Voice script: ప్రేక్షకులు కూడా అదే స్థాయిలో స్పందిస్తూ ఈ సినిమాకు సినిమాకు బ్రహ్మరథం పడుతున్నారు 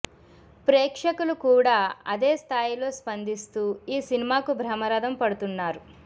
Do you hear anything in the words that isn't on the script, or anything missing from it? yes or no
yes